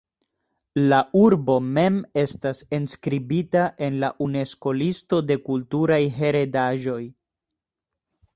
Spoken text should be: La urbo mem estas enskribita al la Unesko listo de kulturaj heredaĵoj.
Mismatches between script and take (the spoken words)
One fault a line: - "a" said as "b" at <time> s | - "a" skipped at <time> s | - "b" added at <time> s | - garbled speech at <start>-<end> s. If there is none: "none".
- "al" said as "en" at 3.9 s